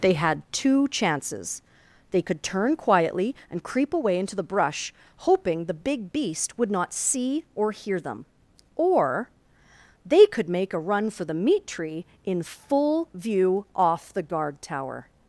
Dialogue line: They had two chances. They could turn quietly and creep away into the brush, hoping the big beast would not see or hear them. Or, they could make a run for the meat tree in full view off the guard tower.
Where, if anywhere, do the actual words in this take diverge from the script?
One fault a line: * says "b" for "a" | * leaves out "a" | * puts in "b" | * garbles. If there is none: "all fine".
all fine